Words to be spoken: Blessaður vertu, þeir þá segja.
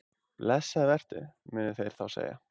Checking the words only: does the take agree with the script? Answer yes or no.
no